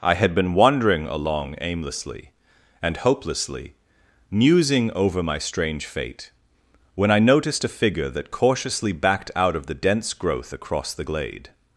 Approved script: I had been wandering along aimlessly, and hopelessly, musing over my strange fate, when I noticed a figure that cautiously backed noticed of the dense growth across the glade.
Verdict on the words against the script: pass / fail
fail